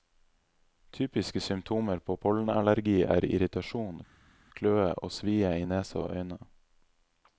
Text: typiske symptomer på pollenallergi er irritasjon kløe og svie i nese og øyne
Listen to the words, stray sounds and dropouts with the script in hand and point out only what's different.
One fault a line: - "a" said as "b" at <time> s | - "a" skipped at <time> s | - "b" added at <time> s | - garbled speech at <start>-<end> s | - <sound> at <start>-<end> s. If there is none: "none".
none